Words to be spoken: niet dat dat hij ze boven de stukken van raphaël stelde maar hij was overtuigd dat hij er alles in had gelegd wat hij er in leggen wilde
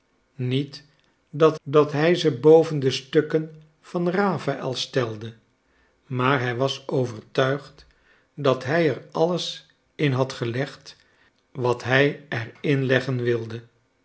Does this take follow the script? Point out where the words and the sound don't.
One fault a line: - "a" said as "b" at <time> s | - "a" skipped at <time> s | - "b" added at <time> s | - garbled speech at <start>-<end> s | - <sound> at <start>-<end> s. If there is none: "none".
none